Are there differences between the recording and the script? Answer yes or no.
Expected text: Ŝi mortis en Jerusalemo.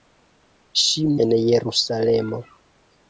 yes